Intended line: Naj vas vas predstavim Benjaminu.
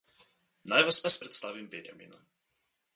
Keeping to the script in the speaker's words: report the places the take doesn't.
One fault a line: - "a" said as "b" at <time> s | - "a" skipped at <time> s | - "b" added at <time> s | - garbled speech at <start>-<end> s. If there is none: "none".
none